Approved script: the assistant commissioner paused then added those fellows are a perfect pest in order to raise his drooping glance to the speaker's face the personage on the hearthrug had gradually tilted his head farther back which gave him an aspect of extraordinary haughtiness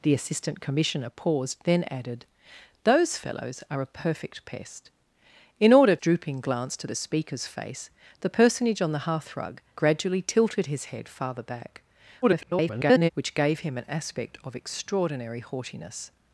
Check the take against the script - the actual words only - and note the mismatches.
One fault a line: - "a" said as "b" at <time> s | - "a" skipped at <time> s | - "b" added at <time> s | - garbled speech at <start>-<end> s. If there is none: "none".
- "to raise his" skipped at 6.0 s
- "had" skipped at 9.6 s
- garbled speech at 12.2-13.1 s